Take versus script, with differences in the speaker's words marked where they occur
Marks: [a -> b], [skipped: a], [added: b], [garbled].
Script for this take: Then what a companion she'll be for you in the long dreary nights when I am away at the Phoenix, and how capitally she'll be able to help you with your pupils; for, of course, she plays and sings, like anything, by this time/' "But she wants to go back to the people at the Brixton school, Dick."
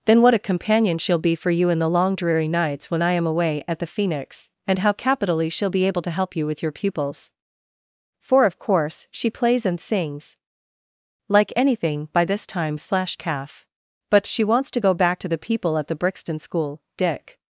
Then what a companion she'll be for you in the long dreary nights when I am away at the Phoenix, and how capitally she'll be able to help you with your pupils; for, of course, she plays and sings, like anything, by this time/' [added: slash calf] "But she wants to go back to the people at the Brixton school, Dick."